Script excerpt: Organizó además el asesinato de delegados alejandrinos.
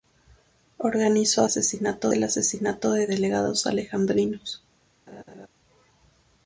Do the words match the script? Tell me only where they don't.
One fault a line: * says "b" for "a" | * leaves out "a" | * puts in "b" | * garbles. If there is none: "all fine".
* says "asesinato" for "además"